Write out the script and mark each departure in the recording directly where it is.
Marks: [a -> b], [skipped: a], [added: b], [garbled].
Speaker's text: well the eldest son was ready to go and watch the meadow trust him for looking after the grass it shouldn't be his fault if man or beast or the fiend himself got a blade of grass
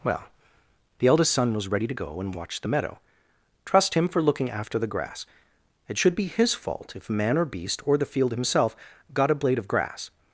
well the eldest son was ready to go and watch the meadow trust him for looking after the grass it [shouldn't -> should] be his fault if man or beast or the [fiend -> field] himself got a blade of grass